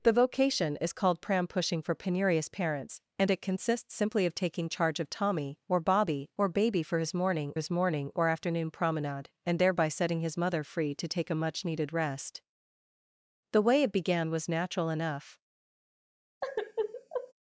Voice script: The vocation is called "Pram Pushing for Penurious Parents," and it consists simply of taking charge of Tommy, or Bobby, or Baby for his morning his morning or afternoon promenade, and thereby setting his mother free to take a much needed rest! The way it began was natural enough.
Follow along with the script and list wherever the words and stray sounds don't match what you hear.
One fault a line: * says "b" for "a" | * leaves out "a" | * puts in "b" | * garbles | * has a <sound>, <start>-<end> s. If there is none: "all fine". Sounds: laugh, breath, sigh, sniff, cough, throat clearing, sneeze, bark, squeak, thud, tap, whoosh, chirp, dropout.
* has a sigh, 16.4-17.3 s